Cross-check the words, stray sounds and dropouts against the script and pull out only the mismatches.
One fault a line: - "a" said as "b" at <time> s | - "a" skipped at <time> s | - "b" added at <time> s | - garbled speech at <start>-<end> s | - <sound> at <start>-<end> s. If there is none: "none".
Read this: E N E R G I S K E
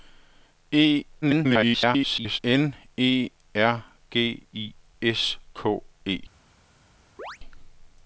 - garbled speech at 1.2-2.4 s
- chirp at 7.2-7.4 s